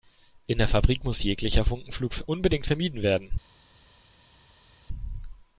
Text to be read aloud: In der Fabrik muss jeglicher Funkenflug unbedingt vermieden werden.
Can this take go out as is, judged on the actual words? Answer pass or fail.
pass